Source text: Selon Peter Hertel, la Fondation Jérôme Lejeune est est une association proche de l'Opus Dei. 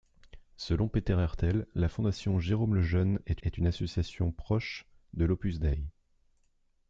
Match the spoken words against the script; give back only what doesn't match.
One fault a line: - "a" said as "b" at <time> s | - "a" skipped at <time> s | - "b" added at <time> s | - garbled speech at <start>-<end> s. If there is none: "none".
none